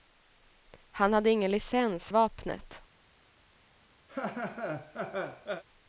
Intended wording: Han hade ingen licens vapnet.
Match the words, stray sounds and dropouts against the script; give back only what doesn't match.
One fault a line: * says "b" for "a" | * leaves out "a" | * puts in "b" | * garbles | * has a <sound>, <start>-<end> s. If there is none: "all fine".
* has a laugh, 4.1-5.6 s